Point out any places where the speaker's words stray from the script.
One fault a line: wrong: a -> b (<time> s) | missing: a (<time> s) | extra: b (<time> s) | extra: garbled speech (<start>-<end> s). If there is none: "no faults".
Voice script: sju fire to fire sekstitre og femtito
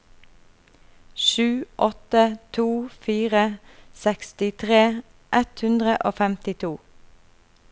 wrong: fire -> åtte (1.8 s)
extra: ett hundre (5.4 s)